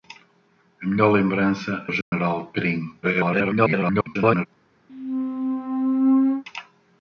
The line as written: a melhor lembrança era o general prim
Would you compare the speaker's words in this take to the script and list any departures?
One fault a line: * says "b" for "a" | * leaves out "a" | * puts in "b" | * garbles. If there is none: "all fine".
* leaves out "era"
* garbles